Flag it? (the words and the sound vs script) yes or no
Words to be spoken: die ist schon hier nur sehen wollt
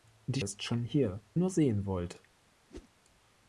yes